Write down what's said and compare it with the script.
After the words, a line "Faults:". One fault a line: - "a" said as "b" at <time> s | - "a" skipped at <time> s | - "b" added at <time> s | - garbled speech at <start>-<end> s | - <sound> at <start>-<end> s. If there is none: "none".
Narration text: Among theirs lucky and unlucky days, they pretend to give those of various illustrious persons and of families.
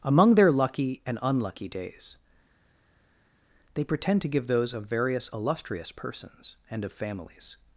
Among their lucky and unlucky days, they pretend to give those of various illustrious persons and of families.
Faults:
- "theirs" said as "their" at 0.3 s